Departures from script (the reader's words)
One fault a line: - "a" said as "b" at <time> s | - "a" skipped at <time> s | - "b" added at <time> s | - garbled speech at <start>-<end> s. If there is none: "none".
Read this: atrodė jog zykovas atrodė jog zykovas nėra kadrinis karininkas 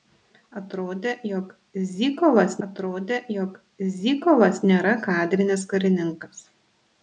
none